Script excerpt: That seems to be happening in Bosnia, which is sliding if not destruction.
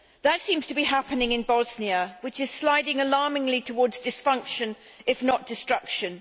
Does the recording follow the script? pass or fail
fail